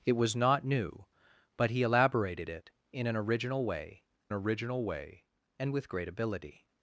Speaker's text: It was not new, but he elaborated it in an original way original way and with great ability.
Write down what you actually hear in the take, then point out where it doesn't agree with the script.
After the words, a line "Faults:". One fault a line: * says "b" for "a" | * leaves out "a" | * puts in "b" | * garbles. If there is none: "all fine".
It was not new, but he elaborated it in an original way original way and with great ability.
Faults:
all fine